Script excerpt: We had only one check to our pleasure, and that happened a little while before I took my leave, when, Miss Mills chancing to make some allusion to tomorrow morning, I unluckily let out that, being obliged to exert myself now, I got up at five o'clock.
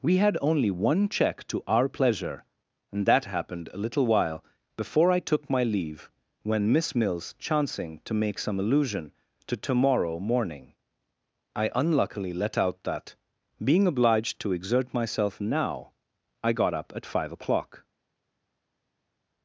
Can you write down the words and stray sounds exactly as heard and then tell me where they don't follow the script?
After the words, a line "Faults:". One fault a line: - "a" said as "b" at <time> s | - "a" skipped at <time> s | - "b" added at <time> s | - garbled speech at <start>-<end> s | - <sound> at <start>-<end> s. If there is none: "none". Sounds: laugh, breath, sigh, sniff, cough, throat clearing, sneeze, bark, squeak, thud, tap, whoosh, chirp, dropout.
We had only one check to our pleasure, and that happened a little while before I took my leave, when, Miss Mills chancing to make some allusion to tomorrow morning, I unluckily let out that, being obliged to exert myself now, I got up at five o'clock.
Faults:
none